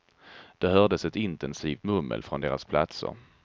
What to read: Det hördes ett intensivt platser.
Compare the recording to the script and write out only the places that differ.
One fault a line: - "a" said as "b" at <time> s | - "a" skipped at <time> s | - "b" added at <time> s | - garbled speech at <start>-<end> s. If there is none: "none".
- "mummel från deras" added at 1.8 s